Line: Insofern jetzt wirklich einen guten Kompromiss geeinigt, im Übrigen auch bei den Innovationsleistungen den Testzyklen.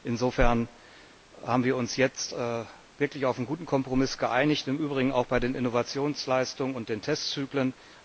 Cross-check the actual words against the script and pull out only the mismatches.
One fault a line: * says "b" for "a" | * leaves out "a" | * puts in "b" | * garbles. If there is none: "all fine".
* puts in "haben wir uns"
* puts in "auf"
* puts in "und"